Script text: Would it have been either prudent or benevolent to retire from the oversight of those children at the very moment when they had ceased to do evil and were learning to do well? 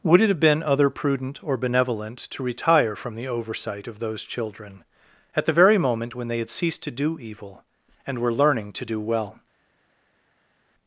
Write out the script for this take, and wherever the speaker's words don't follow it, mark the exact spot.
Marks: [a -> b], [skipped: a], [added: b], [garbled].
Would it have been [either -> other] prudent or benevolent to retire from the oversight of those children at the very moment when they had ceased to do evil and were learning to do well?